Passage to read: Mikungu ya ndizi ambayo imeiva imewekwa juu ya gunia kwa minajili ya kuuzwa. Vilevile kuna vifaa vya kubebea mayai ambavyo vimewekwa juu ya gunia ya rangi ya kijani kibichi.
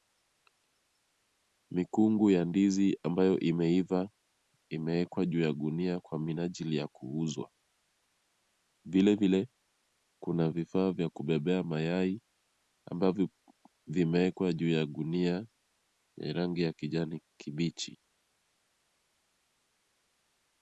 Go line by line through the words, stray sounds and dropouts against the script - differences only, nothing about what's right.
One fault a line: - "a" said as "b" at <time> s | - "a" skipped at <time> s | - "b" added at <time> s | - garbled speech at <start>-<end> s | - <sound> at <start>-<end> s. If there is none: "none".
none